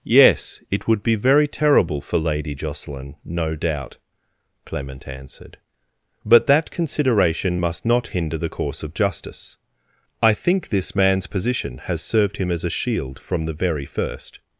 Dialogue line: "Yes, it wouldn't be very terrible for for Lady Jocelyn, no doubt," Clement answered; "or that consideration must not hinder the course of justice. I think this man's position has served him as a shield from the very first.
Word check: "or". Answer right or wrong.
wrong